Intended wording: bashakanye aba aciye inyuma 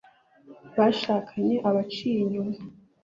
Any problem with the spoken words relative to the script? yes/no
no